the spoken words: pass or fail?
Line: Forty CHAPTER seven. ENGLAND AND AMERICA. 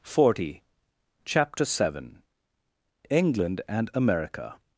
pass